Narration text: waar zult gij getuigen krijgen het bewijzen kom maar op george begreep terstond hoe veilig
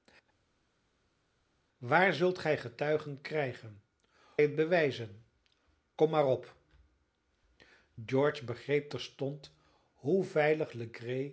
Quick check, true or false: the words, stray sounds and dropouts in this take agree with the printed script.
true